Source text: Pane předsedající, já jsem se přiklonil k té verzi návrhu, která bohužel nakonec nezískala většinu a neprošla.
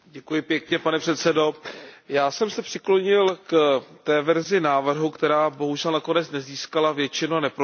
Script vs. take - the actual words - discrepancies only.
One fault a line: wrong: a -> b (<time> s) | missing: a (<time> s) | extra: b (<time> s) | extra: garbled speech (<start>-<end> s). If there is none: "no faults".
no faults